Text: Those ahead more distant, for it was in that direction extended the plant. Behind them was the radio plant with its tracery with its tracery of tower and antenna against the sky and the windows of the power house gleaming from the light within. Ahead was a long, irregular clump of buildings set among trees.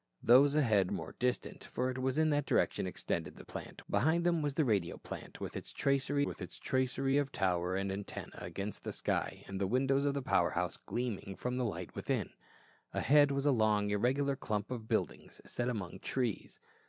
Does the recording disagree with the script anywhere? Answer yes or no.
no